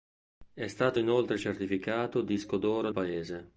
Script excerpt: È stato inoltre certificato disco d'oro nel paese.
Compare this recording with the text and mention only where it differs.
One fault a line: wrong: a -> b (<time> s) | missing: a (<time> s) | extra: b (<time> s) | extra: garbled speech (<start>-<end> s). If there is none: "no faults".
missing: nel (2.9 s)